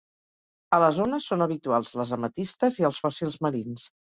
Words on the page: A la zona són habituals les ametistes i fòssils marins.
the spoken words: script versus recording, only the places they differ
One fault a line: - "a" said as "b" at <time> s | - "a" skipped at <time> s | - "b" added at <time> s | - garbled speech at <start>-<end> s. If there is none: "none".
- "els" added at 2.9 s